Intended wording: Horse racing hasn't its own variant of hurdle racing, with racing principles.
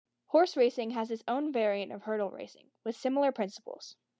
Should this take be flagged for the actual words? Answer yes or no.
yes